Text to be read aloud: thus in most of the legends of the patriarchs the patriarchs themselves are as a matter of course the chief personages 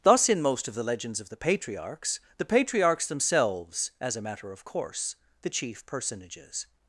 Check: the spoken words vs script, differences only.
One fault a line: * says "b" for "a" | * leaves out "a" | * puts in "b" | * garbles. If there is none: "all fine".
* leaves out "are"